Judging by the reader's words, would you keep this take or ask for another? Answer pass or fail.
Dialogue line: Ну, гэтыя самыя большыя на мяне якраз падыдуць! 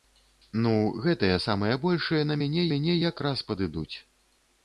fail